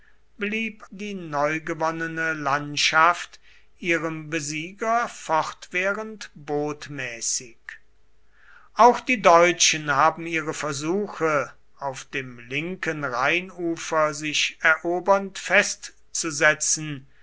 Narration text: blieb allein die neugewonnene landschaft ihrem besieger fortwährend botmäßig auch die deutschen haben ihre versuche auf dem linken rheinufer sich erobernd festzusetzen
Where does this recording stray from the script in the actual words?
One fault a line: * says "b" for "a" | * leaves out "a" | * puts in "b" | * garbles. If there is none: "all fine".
* leaves out "allein"